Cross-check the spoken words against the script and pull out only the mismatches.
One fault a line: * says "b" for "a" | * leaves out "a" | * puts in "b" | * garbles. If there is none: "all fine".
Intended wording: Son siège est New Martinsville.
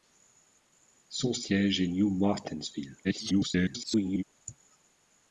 * garbles